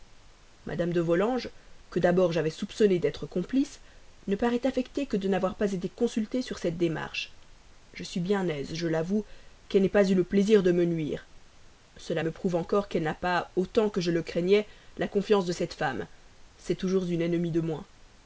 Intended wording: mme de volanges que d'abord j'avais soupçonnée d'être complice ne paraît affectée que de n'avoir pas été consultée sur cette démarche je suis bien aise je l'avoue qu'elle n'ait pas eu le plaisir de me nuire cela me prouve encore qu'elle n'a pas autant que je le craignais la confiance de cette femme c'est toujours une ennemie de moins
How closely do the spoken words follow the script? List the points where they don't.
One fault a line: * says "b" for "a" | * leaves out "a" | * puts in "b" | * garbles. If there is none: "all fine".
all fine